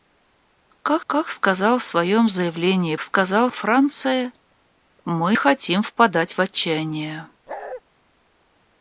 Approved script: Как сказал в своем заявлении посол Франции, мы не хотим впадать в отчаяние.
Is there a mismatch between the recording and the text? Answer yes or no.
yes